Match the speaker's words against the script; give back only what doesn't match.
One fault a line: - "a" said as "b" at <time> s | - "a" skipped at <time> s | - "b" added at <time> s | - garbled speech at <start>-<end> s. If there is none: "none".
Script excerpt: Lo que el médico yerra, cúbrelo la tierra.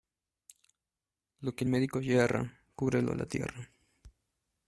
none